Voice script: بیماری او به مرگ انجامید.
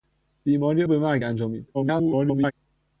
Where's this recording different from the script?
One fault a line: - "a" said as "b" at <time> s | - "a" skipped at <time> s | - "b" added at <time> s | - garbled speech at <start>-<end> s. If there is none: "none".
- "او" skipped at 0.8 s
- garbled speech at 1.7-2.5 s